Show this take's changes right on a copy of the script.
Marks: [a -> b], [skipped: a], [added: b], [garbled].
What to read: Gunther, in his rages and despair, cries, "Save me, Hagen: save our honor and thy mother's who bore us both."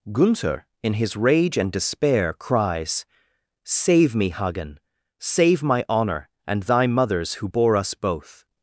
Gunther, in his [rages -> rage] and despair, cries, "Save me, Hagen: save [our -> my] honor and thy mother's who bore us both."